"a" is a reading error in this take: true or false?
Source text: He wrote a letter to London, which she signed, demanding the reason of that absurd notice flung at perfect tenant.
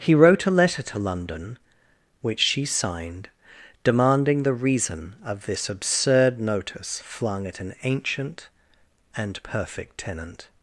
false